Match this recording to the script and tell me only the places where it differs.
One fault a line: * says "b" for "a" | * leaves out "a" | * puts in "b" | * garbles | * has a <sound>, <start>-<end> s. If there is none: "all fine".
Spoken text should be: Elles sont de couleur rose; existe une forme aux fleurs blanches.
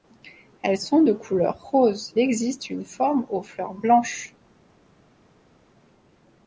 all fine